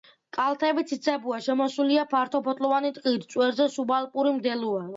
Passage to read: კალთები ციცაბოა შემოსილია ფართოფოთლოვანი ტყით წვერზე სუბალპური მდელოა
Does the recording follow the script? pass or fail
pass